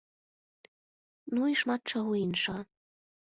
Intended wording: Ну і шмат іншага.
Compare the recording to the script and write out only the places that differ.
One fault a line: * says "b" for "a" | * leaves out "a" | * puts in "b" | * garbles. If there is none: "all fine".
* puts in "чаго"